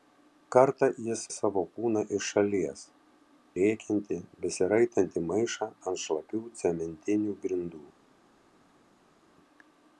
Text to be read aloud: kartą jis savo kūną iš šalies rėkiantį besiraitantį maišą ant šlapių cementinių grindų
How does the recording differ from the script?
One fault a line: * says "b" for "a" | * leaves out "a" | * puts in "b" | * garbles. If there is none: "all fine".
all fine